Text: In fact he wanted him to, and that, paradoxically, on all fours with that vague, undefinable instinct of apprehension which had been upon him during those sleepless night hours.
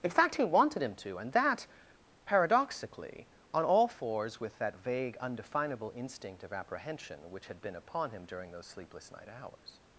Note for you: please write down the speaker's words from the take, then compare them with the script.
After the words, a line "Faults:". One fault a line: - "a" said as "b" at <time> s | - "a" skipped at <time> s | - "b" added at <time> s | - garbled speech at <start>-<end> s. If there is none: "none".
In fact he wanted him to, and that, paradoxically, on all fours with that vague, undefinable instinct of apprehension which had been upon him during those sleepless night hours.
Faults:
none